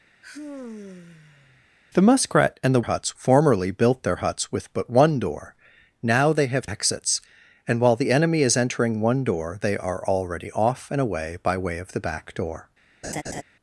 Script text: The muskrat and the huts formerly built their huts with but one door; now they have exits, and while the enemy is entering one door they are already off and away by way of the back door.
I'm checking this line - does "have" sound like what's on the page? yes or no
yes